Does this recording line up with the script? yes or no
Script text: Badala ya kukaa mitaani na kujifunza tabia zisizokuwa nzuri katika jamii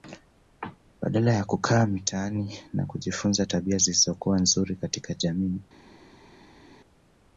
yes